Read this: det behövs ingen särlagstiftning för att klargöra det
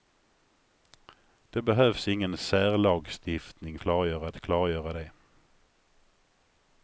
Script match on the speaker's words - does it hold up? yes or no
no